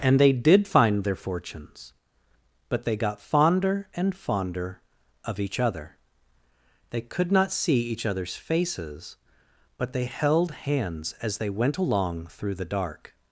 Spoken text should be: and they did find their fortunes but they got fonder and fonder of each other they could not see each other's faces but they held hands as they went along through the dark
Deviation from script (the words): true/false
false